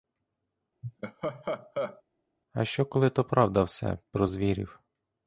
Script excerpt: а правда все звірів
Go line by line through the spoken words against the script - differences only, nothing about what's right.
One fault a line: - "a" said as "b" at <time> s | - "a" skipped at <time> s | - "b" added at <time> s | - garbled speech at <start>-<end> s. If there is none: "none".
- "що коли то" added at 2.6 s
- "про" added at 4.1 s